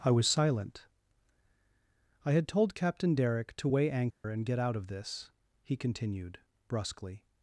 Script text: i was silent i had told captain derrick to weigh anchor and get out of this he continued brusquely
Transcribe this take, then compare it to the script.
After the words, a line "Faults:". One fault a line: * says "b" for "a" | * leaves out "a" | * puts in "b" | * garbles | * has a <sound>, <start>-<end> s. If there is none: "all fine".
i was silent i had told captain derrick to weigh anchor and get out of this he continued brusquely
Faults:
* has a dropout, 4.1-4.2 s